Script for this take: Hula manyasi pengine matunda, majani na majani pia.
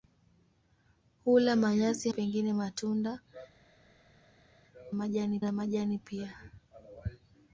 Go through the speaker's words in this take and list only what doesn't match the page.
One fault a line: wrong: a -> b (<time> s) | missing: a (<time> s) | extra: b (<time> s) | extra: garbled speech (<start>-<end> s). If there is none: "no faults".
no faults